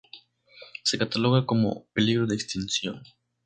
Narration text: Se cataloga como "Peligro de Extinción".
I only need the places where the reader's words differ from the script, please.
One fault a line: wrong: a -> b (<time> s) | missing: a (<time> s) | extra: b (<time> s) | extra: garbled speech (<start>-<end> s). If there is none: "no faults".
no faults